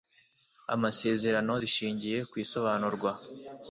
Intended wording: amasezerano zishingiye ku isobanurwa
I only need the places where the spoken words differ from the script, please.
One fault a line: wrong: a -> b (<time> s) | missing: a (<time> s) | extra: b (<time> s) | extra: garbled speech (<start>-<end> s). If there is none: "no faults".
no faults